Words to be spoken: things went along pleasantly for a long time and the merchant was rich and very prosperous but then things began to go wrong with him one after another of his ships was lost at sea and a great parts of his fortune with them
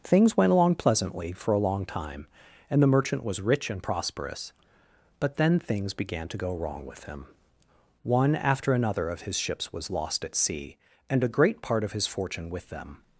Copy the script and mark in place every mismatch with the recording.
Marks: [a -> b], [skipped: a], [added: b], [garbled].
things went along pleasantly for a long time and the merchant was rich and [skipped: very] prosperous but then things began to go wrong with him one after another of his ships was lost at sea and a great [parts -> part] of his fortune with them